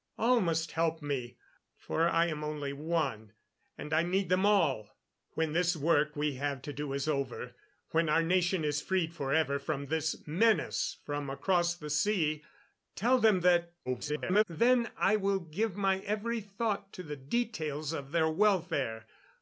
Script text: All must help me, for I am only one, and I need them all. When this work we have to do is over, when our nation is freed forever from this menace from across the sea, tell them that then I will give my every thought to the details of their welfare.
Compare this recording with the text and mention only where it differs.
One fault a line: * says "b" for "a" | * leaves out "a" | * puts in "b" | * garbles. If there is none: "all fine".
* garbles